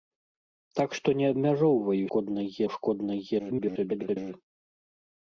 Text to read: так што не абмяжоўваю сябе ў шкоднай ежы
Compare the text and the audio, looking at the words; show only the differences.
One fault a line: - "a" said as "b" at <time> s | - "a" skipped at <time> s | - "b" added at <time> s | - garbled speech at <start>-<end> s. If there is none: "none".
- "сябе" said as "шкоднай" at 2.1 s
- garbled speech at 3.4-4.2 s